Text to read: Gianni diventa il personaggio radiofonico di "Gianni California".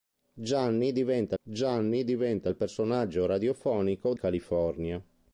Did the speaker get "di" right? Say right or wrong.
wrong